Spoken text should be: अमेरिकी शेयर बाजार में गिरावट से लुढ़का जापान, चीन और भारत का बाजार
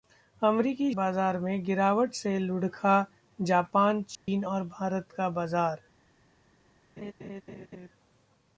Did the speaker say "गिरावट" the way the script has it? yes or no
yes